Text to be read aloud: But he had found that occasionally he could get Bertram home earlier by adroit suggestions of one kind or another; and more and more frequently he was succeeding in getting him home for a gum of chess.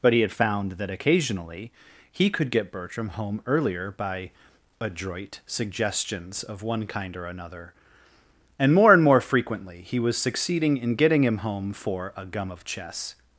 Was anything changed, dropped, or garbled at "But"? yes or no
no